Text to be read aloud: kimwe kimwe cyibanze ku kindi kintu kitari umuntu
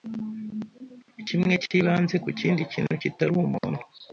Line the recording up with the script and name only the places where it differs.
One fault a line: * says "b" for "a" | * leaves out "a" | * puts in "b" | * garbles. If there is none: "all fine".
* leaves out "kimwe"